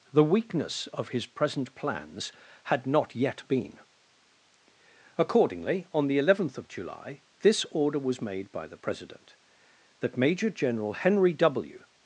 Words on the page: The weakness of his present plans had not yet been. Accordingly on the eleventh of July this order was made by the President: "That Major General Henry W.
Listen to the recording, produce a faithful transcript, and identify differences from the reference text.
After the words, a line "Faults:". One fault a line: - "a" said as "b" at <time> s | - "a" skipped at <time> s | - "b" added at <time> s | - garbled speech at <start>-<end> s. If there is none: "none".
The weakness of his present plans had not yet been. Accordingly on the eleventh of July this order was made by the President: "That Major General Henry W.
Faults:
none